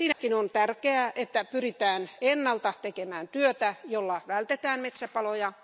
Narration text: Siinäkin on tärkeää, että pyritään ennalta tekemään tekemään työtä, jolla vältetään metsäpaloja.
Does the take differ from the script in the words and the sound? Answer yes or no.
yes